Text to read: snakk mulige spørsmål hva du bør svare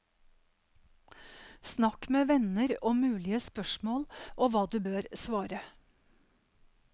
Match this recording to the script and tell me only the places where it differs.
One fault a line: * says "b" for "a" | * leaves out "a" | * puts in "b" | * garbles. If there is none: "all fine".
* puts in "med venner om"
* puts in "og"